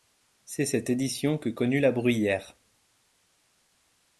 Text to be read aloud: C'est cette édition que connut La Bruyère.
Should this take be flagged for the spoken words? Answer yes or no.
no